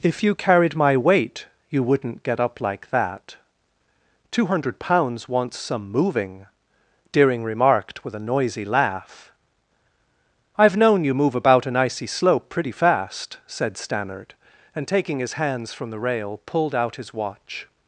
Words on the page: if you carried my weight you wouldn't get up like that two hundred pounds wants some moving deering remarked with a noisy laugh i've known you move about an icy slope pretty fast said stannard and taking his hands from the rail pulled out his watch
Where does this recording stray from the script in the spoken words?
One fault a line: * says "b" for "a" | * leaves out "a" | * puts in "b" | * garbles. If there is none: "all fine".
all fine